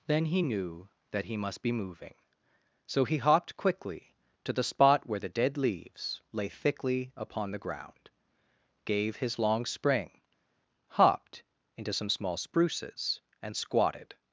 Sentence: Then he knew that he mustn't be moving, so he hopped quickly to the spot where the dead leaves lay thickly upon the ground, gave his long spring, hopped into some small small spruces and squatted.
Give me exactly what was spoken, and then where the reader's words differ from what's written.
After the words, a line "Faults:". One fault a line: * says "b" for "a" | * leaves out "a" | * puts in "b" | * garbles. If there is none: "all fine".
Then he knew that he must be moving, so he hopped quickly to the spot where the dead leaves lay thickly upon the ground, gave his long spring, hopped into some small spruces and squatted.
Faults:
* says "must" for "mustn't"
* leaves out "small"